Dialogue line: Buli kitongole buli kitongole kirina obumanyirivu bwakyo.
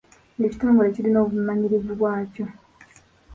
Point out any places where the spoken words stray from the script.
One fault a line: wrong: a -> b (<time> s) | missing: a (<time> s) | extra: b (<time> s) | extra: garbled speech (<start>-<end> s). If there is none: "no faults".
missing: buli kitongole (0.9 s)